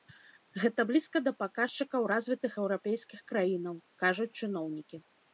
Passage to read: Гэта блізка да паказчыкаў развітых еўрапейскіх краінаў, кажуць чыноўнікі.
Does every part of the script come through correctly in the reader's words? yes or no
yes